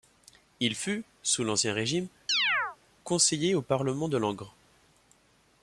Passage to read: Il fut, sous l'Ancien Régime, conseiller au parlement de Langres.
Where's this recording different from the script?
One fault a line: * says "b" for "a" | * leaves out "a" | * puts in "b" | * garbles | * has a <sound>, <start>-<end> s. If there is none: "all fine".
* has a chirp, 2.3-2.8 s